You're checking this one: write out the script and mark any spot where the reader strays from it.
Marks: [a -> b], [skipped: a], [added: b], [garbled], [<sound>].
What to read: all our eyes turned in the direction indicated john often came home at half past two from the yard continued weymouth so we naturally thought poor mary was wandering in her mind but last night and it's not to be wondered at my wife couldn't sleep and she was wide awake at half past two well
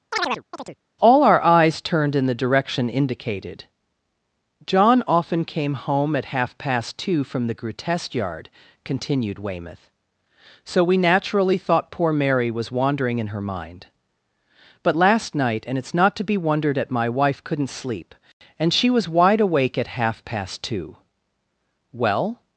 [chirp] all our eyes turned in the direction indicated john often came home at half past two from the [added: grotesque] yard continued weymouth so we naturally thought poor mary was wandering in her mind but last night and it's not to be wondered at my wife couldn't sleep and she was wide awake at half past two well